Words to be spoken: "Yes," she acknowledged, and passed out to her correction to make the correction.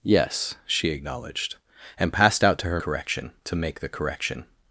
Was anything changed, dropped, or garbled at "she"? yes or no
no